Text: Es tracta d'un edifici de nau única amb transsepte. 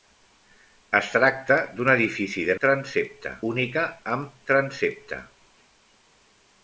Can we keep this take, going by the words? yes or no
no